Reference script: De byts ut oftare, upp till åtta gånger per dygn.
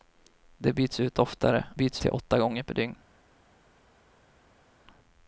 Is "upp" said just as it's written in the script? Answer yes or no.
no